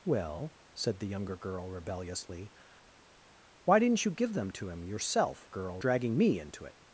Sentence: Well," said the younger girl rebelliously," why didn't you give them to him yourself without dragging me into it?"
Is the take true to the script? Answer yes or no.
no